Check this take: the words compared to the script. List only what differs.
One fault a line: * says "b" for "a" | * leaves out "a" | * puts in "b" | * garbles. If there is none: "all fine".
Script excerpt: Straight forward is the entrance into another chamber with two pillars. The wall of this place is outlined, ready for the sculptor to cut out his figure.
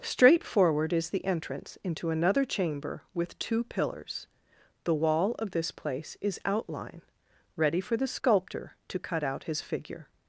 * says "outline" for "outlined"